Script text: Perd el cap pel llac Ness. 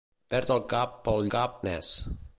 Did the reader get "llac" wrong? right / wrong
wrong